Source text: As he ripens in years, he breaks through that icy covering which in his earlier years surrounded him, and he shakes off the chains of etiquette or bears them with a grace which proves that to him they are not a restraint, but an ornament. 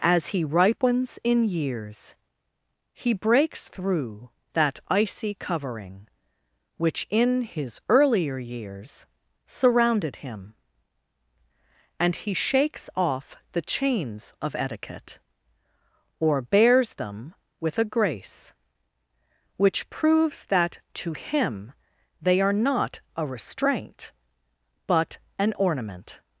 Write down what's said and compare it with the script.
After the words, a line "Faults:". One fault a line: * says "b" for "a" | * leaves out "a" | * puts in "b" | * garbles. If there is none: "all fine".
As he ripens in years, he breaks through that icy covering which in his earlier years surrounded him, and he shakes off the chains of etiquette or bears them with a grace which proves that to him they are not a restraint, but an ornament.
Faults:
all fine